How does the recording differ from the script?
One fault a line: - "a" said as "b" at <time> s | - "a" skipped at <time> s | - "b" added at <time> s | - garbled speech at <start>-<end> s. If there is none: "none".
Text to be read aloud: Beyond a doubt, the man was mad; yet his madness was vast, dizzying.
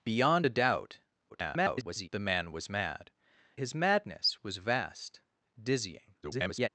- garbled speech at 1.3-2.1 s
- "yet" skipped at 3.1 s
- garbled speech at 6.2-6.7 s